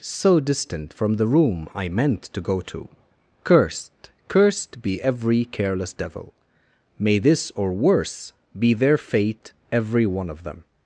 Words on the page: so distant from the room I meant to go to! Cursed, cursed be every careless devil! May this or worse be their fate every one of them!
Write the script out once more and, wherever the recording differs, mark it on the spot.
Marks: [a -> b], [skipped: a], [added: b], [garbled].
so distant from the room I meant to go to! Cursed, cursed be every careless devil! May this or worse be their fate every one of them!